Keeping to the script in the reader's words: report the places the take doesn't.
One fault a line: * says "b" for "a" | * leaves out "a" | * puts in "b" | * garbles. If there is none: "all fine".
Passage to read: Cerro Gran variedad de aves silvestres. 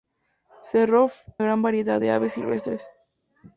all fine